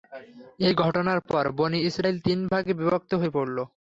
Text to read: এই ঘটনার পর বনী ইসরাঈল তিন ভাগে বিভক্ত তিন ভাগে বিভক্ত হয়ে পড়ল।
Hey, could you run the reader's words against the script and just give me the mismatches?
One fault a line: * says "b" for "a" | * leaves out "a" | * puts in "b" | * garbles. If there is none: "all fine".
* leaves out "তিন ভাগে বিভক্ত"